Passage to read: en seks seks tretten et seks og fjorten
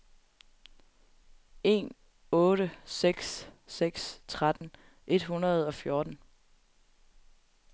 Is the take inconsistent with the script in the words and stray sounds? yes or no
yes